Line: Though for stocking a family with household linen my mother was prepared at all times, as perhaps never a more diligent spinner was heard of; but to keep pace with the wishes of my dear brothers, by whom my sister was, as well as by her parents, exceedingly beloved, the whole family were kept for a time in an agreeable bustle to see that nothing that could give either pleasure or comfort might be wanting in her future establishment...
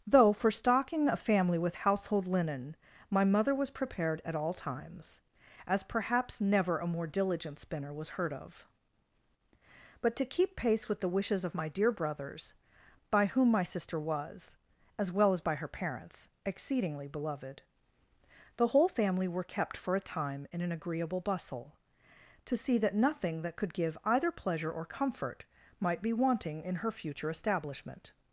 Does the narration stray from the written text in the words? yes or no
no